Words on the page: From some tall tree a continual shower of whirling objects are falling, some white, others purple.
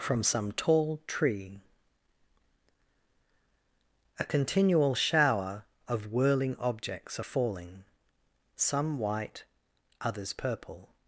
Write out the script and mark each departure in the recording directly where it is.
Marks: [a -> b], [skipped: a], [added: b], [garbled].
From some tall tree a continual shower of whirling objects are falling, some white, others purple.